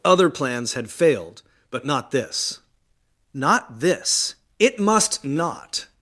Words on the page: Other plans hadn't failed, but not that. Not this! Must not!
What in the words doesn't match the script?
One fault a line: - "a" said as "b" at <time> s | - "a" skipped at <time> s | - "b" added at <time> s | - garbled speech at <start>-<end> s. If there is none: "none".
- "hadn't" said as "had" at 0.7 s
- "that" said as "this" at 2.1 s
- "It" added at 4.6 s